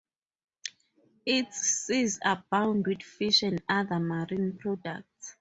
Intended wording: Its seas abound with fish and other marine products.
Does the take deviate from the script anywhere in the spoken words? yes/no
no